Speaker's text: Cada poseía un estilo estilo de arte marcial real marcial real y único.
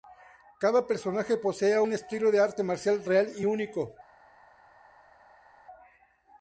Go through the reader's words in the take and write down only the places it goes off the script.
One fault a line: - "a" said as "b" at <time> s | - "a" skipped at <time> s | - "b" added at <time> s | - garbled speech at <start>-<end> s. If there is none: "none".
- "personaje" added at 0.9 s
- "estilo" skipped at 2.3 s
- "marcial real" skipped at 3.3 s